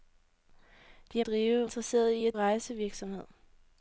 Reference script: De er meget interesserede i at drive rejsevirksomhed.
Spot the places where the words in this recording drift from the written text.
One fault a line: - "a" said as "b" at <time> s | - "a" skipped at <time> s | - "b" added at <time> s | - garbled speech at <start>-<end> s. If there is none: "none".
- "meget" said as "drive" at 1.2 s
- "drive" skipped at 2.4 s